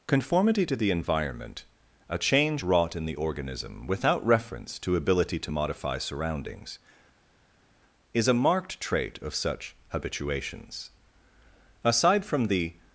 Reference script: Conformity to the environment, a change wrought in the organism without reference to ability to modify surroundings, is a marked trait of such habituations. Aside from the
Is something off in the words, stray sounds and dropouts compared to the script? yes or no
no